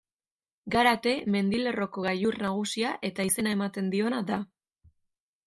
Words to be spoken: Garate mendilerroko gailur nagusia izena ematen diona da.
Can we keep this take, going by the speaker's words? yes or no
no